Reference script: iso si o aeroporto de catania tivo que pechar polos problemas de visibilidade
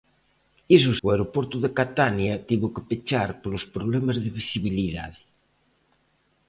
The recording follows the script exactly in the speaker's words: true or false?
false